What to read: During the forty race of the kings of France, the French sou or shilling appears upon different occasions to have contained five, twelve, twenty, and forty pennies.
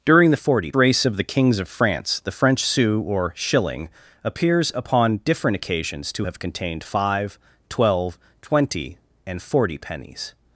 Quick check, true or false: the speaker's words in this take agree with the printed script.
true